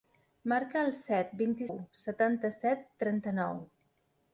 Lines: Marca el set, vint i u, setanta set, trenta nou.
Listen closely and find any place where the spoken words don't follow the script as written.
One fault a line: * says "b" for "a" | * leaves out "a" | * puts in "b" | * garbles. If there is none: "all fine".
all fine